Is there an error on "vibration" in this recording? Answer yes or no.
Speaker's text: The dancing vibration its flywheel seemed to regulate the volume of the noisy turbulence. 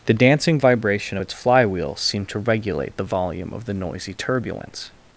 no